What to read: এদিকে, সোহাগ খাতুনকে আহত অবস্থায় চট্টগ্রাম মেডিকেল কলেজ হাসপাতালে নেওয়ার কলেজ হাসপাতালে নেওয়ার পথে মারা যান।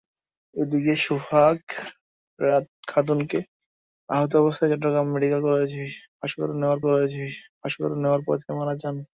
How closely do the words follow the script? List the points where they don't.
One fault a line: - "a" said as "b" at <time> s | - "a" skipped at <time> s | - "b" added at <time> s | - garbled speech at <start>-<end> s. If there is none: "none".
none